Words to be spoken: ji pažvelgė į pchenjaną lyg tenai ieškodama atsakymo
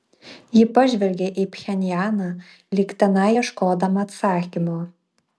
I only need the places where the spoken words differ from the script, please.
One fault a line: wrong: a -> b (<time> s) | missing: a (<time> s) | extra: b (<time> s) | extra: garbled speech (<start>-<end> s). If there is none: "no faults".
no faults